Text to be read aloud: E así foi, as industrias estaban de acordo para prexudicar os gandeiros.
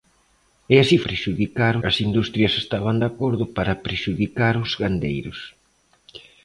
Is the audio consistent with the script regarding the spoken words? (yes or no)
no